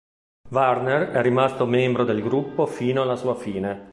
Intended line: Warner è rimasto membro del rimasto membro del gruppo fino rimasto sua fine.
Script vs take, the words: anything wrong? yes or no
yes